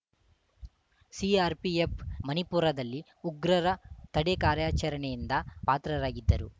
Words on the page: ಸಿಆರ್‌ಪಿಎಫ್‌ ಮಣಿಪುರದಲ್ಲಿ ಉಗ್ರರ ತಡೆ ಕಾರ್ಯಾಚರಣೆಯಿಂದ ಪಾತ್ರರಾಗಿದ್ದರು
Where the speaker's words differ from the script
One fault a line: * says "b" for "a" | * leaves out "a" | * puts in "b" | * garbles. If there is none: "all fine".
all fine